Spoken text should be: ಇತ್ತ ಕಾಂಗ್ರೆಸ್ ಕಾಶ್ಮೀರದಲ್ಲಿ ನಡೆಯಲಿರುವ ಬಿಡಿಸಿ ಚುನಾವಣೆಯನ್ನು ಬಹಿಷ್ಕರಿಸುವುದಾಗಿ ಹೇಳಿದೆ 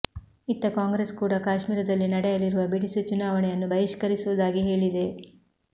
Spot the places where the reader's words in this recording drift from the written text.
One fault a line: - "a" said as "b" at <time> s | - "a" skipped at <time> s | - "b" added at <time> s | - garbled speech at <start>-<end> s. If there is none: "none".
- "ಕೂಡ" added at 1.1 s